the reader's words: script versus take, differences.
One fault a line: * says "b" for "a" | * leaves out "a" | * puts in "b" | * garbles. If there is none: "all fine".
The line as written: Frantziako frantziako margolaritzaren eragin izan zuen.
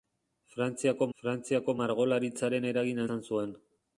all fine